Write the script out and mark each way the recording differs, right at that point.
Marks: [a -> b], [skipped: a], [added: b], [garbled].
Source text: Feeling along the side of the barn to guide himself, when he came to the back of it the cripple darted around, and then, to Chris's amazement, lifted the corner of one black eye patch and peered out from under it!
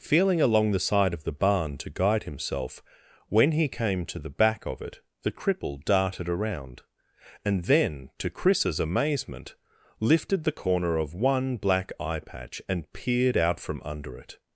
Feeling along the side of the barn to guide himself, when he came to the back of it the cripple darted around, and then, to Chris's amazement, lifted the corner of one black eye patch and peered out from under it!